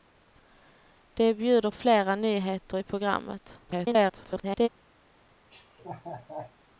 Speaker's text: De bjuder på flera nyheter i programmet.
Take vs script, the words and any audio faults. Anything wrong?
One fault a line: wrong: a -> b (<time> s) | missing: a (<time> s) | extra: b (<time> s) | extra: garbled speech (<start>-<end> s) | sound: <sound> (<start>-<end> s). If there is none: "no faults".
missing: på (1.7 s)
extra: garbled speech (3.6-4.7 s)
sound: laugh (5.5-6.5 s)